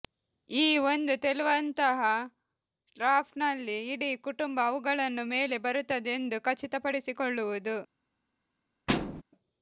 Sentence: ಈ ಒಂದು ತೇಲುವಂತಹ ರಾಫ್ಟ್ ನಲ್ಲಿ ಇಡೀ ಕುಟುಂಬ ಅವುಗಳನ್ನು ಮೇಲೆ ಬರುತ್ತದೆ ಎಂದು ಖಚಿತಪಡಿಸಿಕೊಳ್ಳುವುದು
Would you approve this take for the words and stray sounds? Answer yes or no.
no